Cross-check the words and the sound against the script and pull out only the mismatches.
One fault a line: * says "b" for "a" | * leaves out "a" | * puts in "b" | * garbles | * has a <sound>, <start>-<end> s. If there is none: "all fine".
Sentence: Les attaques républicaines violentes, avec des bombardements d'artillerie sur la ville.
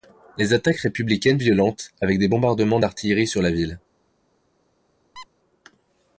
* has a squeak, 5.2-5.3 s